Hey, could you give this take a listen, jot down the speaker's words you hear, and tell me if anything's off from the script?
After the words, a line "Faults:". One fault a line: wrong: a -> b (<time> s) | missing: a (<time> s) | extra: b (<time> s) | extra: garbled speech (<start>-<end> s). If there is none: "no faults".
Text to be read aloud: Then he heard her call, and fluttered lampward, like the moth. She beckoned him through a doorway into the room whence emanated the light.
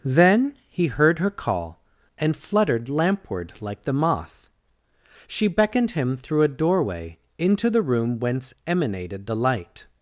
Then he heard her call, and fluttered lampward, like the moth. She beckoned him through a doorway into the room whence emanated the light.
Faults:
no faults